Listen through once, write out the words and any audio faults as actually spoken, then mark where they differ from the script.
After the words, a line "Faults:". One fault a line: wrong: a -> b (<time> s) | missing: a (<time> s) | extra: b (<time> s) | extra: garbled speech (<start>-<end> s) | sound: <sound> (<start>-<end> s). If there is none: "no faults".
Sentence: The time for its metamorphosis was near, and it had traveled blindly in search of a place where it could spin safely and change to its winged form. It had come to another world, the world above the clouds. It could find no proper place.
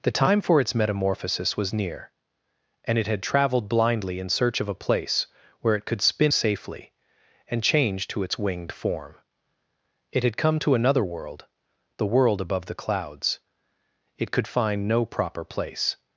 The time for its metamorphosis was near, and it had traveled blindly in search of a place where it could spin safely and change to its winged form. It had come to another world, the world above the clouds. It could find no proper place.
Faults:
no faults